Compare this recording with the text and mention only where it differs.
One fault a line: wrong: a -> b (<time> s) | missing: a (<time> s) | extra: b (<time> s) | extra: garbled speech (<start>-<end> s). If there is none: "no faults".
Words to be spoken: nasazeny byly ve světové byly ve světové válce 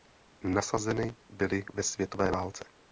missing: byly ve světové (2.3 s)